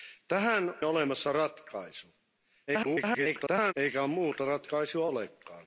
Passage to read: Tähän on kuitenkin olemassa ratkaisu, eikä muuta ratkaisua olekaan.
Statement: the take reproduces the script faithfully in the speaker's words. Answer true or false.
false